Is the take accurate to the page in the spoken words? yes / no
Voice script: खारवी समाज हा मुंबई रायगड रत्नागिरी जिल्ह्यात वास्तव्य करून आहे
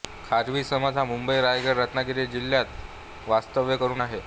yes